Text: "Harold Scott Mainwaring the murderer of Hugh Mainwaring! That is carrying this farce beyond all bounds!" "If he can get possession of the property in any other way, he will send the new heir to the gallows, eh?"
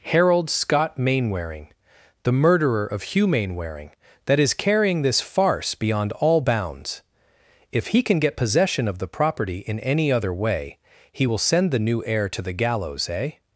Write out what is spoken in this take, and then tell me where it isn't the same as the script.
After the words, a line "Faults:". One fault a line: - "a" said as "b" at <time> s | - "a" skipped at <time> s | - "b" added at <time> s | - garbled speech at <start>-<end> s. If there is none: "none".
"Harold Scott Mainwaring the murderer of Hugh Mainwaring! That is carrying this farce beyond all bounds!" "If he can get possession of the property in any other way, he will send the new heir to the gallows, eh?"
Faults:
none